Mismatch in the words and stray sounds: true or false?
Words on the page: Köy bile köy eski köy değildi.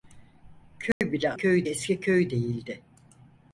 true